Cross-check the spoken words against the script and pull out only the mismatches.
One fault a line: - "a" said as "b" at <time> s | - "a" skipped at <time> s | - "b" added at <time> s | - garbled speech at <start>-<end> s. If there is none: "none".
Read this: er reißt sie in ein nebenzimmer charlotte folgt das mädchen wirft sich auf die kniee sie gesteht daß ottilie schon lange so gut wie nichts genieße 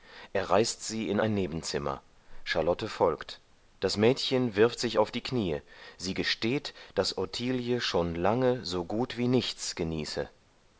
none